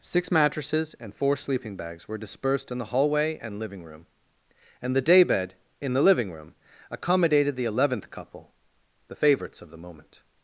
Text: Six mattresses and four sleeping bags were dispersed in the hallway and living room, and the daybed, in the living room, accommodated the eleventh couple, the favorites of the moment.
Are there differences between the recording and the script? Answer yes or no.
no